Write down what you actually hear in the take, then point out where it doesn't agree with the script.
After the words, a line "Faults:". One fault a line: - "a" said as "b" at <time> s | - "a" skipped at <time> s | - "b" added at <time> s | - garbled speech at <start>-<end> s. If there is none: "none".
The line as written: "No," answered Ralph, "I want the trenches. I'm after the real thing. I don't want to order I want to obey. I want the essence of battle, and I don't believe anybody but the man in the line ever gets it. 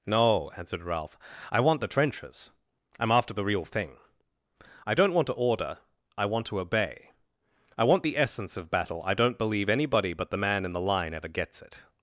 "No," answered Ralph, "I want the trenches. I'm after the real thing. I don't want to order I want to obey. I want the essence of battle, I don't believe anybody but the man in the line ever gets it.
Faults:
- "and" skipped at 9.0 s